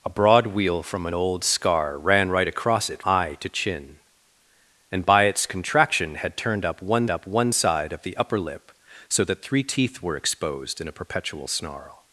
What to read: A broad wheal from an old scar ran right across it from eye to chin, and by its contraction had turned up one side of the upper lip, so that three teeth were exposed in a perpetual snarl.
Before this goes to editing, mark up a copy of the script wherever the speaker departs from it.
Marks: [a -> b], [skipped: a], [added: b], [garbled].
A broad wheal from an old scar ran right across it [skipped: from] eye to chin, and by its contraction had turned up one [added: up one] side of the upper lip, so that three teeth were exposed in a perpetual snarl.